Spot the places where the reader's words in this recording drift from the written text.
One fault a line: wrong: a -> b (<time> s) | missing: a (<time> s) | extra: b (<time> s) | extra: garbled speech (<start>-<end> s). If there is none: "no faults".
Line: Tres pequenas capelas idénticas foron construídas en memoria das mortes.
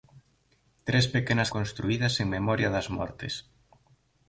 missing: capelas idénticas foron (1.5 s)